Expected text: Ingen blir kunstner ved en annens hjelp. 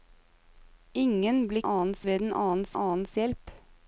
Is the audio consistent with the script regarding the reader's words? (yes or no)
no